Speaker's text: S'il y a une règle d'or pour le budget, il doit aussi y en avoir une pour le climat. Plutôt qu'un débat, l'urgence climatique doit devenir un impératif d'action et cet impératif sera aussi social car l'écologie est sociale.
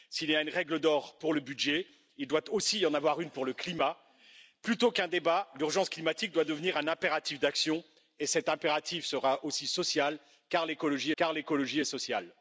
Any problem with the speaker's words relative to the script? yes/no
yes